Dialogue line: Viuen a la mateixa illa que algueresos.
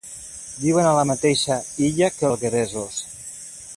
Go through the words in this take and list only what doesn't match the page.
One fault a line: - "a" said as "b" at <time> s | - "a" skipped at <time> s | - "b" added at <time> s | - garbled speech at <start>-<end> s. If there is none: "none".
none